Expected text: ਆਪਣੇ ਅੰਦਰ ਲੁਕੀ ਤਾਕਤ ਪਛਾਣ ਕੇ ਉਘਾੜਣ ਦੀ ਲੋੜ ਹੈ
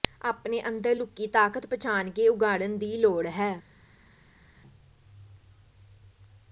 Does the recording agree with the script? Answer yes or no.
yes